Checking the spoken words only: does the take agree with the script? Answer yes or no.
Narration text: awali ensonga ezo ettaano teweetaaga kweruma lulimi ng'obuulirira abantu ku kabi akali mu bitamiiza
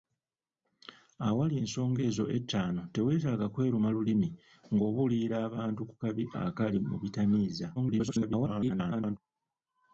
no